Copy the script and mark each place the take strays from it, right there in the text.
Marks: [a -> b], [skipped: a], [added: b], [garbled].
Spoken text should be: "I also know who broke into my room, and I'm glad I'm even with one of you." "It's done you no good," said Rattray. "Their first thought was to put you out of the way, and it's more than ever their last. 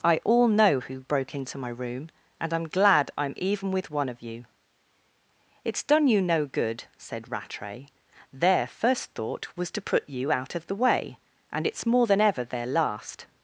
"I [also -> all] know who broke into my room, and I'm glad I'm even with one of you." "It's done you no good," said Rattray. "Their first thought was to put you out of the way, and it's more than ever their last.